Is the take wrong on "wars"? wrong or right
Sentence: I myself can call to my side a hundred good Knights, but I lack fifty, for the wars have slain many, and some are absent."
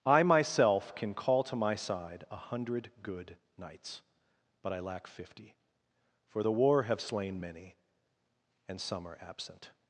wrong